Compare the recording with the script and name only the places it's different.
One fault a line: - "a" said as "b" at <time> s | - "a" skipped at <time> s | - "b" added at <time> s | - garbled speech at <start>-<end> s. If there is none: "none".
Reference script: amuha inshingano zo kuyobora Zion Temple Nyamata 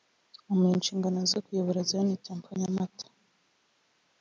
none